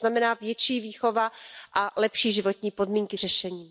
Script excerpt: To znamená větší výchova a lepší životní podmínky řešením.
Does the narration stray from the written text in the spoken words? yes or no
no